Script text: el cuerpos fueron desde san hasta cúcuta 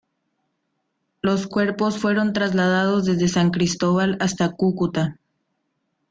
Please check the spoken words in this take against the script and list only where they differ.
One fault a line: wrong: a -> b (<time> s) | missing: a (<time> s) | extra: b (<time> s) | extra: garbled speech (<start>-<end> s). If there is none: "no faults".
wrong: el -> los (1.2 s)
extra: trasladados (2.3 s)
extra: cristóbal (3.5 s)